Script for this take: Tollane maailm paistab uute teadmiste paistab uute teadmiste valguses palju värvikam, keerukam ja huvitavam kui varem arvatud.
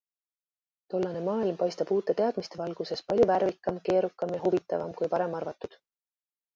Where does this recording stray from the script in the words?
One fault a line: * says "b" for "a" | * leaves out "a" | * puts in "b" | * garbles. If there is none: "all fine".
* leaves out "paistab uute teadmiste"